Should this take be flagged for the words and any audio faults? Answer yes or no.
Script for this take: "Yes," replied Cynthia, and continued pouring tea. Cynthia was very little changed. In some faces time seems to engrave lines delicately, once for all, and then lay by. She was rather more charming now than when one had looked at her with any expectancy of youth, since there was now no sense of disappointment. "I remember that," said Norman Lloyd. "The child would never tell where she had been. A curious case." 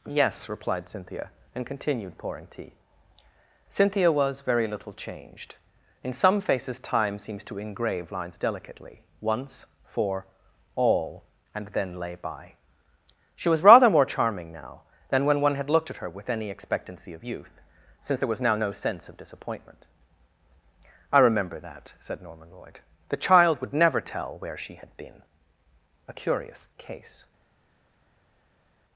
no